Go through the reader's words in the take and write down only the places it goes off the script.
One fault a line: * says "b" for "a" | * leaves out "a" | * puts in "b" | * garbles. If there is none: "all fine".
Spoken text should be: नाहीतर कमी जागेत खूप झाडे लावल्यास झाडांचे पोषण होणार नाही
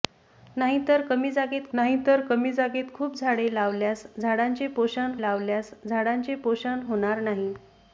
* puts in "नाहीतर कमी जागेत"
* puts in "लावल्यास झाडांचे पोषण"